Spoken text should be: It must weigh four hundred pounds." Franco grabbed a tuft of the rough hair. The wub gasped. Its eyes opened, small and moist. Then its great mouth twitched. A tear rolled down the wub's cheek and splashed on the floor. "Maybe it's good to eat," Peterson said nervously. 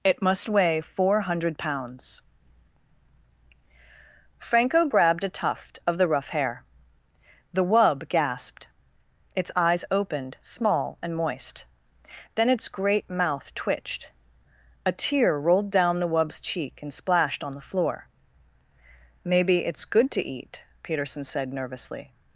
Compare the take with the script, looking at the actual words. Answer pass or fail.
pass